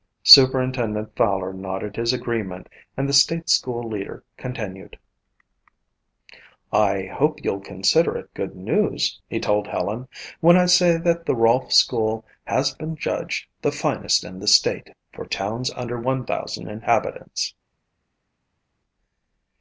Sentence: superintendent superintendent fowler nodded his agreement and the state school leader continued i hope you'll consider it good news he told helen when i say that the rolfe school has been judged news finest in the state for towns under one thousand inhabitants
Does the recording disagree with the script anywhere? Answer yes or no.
yes